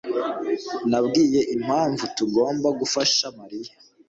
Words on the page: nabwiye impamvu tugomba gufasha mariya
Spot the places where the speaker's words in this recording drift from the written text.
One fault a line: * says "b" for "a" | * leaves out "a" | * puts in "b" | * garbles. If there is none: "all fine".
all fine